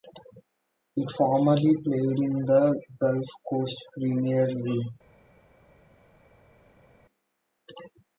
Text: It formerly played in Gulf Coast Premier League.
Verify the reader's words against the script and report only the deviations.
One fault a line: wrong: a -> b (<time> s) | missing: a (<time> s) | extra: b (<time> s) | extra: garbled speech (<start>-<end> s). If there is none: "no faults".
extra: the (2.4 s)